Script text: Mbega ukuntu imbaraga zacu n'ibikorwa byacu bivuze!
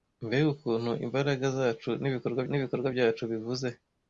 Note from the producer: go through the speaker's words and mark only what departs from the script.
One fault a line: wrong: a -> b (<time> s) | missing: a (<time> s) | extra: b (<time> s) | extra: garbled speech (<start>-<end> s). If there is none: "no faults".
extra: n'ibikorwa (2.5 s)